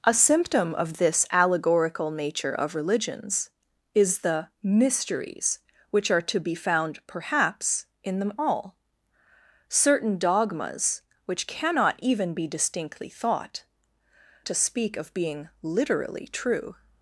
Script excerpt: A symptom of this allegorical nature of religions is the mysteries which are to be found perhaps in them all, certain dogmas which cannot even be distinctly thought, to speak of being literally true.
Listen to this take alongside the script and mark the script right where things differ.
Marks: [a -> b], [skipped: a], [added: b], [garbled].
A symptom of this allegorical nature of religions is the mysteries which are to be found perhaps in them all, certain dogmas which cannot even be distinctly thought, to speak of being literally true.